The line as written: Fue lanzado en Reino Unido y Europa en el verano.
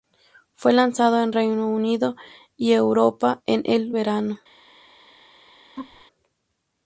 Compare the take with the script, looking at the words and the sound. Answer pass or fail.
fail